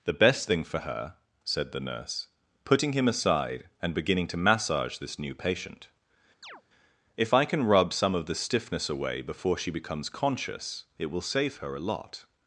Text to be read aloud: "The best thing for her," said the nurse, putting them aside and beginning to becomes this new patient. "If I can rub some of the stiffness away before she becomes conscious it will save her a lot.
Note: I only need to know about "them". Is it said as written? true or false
false